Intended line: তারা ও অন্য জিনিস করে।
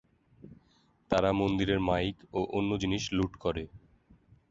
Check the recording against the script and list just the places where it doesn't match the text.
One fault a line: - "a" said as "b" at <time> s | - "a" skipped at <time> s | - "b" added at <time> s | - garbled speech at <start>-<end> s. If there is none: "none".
- "মন্দিরের মাইক" added at 1.4 s
- "লুট" added at 3.2 s